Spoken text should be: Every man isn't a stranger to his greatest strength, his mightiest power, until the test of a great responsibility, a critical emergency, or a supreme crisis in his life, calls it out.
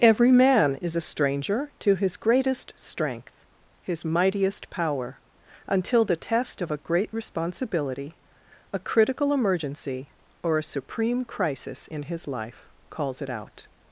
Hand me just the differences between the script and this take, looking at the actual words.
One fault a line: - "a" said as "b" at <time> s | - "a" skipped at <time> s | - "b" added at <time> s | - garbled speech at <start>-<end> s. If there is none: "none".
- "isn't" said as "is" at 0.8 s